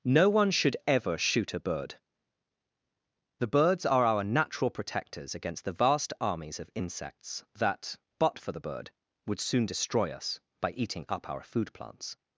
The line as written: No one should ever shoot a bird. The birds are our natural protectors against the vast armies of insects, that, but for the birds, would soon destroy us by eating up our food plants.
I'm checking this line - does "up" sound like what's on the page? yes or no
yes